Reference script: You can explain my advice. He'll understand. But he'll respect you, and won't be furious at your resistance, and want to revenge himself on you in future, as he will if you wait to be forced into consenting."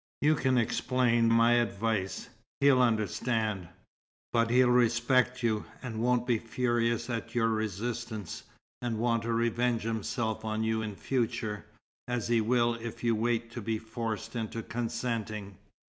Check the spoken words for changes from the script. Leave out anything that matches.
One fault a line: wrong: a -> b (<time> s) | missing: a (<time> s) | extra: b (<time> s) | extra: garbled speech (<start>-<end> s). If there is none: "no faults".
no faults